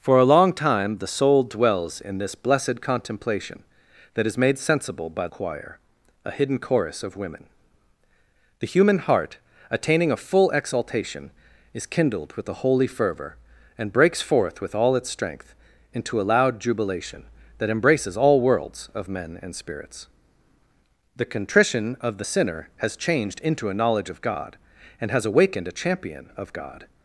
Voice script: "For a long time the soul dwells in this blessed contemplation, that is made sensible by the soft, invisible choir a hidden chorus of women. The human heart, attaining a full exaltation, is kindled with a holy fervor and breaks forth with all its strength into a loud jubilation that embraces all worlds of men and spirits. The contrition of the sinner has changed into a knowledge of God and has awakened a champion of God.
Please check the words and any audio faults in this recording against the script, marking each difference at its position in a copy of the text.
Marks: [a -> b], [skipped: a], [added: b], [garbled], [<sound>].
"For a long time the soul dwells in this blessed contemplation, that is made sensible by [skipped: the soft, invisible] choir a hidden chorus of women. The human heart, attaining a full exaltation, is kindled with a holy fervor and breaks forth with all its strength into a loud jubilation that embraces all worlds of men and spirits. The contrition of the sinner has changed into a knowledge of God and has awakened a champion of God.